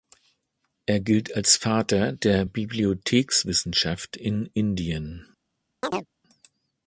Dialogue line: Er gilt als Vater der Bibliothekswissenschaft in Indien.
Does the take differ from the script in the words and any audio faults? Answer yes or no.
yes